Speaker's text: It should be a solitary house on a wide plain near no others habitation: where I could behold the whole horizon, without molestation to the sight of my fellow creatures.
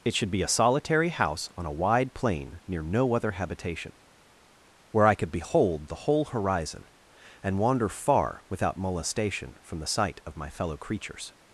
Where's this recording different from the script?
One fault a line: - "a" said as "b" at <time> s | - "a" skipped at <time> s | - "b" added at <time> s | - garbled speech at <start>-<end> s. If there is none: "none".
- "others" said as "other" at 3.1 s
- "and wander far" added at 7.4 s
- "to" said as "from" at 9.6 s